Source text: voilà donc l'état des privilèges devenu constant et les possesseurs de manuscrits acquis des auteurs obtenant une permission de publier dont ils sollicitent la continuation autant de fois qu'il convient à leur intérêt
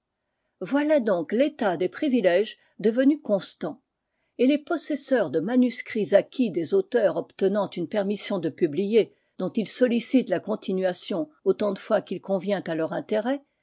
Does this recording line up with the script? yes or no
yes